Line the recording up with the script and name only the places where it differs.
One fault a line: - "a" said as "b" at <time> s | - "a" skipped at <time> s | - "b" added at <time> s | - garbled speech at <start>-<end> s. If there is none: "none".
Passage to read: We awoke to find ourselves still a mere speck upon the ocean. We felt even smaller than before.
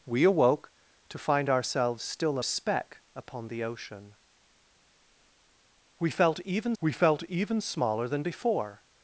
- "mere" skipped at 2.4 s
- "we felt even" added at 6.8 s